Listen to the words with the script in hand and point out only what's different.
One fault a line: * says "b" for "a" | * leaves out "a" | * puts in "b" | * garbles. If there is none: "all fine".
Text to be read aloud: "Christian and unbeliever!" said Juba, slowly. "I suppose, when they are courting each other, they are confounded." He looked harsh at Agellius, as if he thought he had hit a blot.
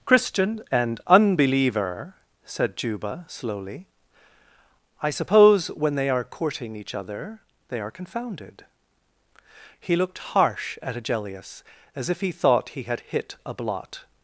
all fine